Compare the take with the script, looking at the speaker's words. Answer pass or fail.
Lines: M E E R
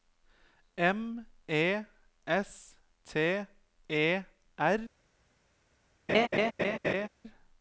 fail